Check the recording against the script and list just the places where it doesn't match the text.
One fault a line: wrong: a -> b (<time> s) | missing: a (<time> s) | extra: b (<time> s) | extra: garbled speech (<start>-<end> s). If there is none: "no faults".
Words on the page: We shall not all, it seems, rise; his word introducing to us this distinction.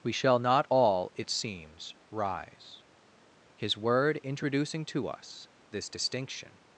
no faults